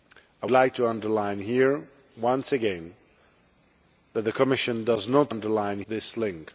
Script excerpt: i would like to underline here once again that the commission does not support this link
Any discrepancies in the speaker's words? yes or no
yes